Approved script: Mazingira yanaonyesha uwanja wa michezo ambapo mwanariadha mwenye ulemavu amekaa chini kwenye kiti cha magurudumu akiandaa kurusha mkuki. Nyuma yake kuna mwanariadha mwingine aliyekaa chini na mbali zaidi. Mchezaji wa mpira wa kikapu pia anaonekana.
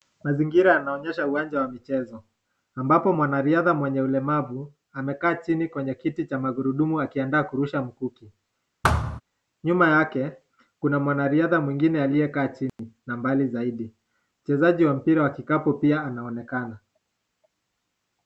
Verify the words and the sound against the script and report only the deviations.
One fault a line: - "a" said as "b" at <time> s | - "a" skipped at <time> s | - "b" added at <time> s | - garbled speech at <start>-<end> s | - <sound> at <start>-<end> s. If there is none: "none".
- thud at 8.8-9.2 s
- dropout at 12.7-12.8 s